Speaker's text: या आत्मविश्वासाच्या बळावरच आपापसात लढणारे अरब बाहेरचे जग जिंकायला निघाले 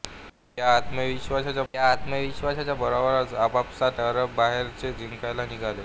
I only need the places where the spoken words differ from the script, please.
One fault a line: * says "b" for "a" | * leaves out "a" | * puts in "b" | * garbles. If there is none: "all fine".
* puts in "या आत्मविश्वासाच्या"
* leaves out "लढणारे"
* leaves out "जग"